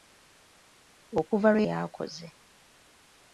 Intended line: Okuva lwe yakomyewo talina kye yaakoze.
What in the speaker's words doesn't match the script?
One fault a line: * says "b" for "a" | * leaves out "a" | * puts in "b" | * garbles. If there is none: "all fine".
* leaves out "yakomyewo talina kye"